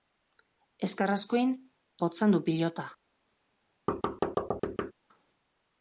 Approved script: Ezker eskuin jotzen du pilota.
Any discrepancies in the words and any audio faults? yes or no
yes